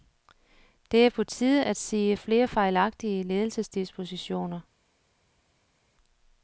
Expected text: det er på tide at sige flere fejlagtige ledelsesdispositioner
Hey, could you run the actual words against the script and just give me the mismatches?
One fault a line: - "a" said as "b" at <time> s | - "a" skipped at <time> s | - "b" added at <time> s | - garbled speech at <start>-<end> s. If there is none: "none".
none